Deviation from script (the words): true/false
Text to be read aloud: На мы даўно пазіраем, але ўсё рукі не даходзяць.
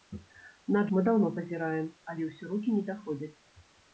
false